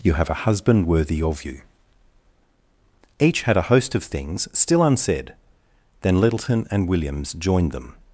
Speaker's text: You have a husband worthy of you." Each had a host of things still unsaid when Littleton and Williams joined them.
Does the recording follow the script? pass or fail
fail